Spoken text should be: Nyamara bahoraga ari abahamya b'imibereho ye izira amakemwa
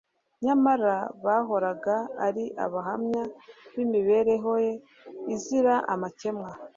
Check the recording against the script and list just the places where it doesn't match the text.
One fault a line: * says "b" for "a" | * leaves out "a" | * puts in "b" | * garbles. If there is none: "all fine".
all fine